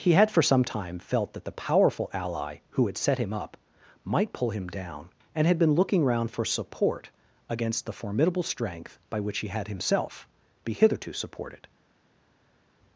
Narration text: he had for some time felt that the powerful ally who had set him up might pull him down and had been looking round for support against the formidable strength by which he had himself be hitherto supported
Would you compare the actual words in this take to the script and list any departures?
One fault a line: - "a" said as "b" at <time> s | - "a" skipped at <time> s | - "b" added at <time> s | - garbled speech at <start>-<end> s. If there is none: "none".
none